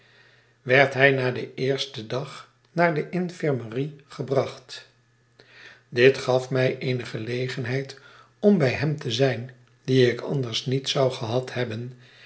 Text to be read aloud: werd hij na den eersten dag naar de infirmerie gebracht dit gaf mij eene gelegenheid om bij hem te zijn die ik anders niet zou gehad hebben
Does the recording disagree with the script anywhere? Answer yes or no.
no